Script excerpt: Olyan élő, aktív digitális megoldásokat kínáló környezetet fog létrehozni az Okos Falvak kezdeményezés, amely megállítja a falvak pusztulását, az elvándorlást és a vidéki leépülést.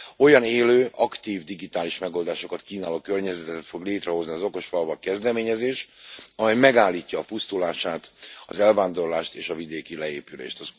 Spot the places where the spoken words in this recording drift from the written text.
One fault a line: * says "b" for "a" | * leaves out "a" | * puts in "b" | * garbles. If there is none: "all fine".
* leaves out "falvak"